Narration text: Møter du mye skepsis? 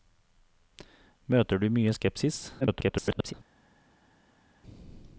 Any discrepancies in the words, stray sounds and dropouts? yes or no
yes